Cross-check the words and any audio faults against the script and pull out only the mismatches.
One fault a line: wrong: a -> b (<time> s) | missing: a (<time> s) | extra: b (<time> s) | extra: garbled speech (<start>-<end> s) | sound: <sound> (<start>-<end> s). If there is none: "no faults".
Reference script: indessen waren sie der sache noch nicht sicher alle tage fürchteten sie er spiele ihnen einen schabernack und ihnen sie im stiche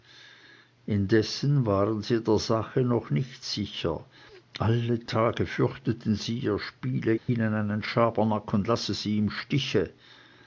sound: dropout (7.2-7.3 s)
wrong: ihnen -> lasse (8.7 s)